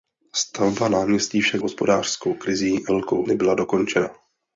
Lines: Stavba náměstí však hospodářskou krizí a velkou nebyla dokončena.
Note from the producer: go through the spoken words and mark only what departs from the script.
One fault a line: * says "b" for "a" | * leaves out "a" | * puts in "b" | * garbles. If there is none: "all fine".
all fine